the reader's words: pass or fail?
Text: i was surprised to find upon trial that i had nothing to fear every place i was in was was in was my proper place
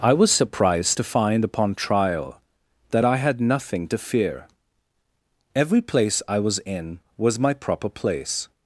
fail